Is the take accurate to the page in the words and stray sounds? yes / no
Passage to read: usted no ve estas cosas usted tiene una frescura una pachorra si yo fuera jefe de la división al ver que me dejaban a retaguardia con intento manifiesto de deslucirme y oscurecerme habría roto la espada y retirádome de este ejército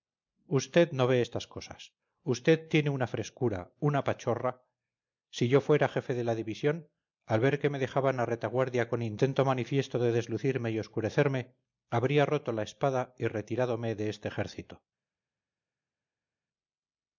yes